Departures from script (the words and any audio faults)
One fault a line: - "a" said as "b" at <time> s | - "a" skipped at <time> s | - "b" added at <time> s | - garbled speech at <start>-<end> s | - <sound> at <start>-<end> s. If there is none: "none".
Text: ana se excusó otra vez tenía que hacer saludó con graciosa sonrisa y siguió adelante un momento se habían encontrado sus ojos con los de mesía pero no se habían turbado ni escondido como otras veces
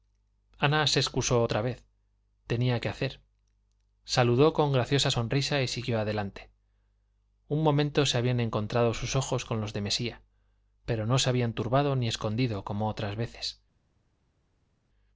none